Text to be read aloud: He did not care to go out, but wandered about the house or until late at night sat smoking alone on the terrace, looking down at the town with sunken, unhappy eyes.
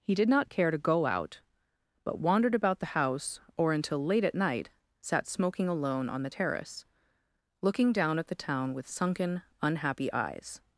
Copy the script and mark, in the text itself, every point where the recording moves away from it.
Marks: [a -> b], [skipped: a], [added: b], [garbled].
He did not care to go out, but wandered about the house or until late at night sat smoking alone on the terrace, looking down at the town with sunken, unhappy eyes.